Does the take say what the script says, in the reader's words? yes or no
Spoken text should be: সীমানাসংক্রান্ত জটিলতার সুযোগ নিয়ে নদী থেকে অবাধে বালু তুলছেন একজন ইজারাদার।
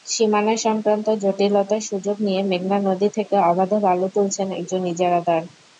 no